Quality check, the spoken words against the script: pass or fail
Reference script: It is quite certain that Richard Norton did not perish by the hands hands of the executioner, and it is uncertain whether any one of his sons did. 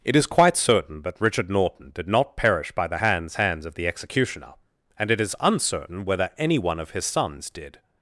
pass